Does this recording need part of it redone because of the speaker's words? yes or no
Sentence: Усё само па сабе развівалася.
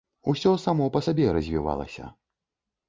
no